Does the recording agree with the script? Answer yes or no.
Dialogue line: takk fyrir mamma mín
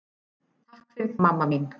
yes